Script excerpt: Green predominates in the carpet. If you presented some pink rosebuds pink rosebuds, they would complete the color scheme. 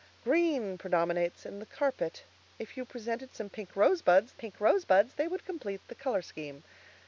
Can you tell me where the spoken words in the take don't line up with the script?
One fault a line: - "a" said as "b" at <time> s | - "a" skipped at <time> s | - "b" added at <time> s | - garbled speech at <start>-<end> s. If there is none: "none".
none